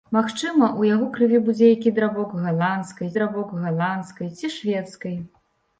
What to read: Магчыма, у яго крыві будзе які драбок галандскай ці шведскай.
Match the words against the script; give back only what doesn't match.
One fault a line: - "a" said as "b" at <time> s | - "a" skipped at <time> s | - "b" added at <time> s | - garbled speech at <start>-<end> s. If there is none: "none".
- "драбок галандскай" added at 3.2 s